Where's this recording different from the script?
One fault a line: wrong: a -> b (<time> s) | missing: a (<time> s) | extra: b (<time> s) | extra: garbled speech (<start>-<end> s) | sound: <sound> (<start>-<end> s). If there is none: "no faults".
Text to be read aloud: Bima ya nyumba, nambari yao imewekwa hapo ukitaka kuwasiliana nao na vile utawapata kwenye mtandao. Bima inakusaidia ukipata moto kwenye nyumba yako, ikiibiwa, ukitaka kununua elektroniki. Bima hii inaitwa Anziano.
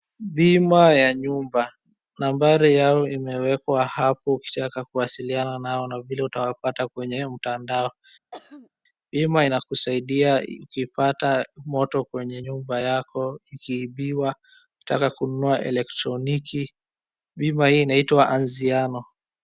sound: throat clearing (8.3-8.7 s)